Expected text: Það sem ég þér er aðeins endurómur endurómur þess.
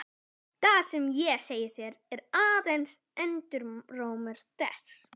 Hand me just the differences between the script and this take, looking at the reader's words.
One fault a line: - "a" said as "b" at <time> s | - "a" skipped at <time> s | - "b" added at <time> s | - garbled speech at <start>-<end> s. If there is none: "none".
- "segi" added at 1.5 s
- "endurómur" skipped at 4.5 s